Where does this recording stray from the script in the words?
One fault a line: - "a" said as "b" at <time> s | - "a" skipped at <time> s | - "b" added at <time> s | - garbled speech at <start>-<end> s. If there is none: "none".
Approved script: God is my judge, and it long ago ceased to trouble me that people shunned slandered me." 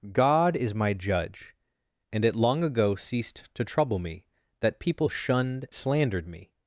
none